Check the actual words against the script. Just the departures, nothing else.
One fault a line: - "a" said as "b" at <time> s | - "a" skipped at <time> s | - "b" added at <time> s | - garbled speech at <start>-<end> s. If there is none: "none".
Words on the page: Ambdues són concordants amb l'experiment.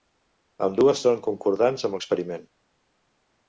none